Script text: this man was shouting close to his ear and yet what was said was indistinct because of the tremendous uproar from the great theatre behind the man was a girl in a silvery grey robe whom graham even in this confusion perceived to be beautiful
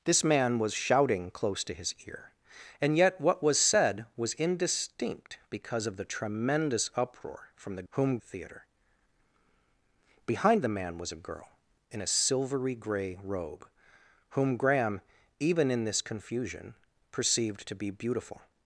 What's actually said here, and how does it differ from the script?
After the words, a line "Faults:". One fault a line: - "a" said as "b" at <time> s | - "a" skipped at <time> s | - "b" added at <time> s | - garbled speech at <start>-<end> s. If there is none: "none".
this man was shouting close to his ear and yet what was said was indistinct because of the tremendous uproar from the whom theatre behind the man was a girl in a silvery grey robe whom graham even in this confusion perceived to be beautiful
Faults:
- "great" said as "whom" at 7.9 s